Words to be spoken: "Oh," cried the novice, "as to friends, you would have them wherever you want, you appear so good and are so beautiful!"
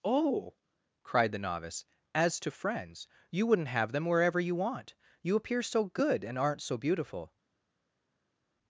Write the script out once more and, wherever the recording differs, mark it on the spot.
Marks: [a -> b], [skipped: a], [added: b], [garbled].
"Oh," cried the novice, "as to friends, you [would -> wouldn't] have them wherever you want, you appear so good and [are -> aren't] so beautiful!"